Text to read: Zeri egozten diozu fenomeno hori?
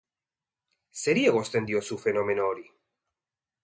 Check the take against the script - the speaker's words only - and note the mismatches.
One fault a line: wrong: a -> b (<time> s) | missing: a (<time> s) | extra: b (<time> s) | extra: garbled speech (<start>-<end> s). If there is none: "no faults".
no faults